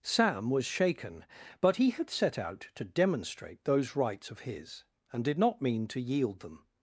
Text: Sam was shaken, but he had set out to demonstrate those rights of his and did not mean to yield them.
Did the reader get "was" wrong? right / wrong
right